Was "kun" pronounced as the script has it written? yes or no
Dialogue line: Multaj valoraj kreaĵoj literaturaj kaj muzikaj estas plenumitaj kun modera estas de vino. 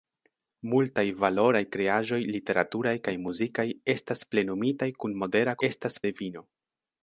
yes